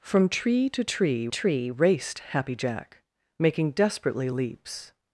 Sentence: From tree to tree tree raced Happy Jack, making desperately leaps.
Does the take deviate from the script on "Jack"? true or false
false